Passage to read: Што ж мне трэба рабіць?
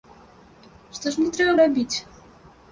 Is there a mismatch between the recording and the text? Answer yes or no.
no